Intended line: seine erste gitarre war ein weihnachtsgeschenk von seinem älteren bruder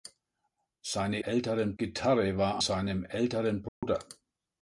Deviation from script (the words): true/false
true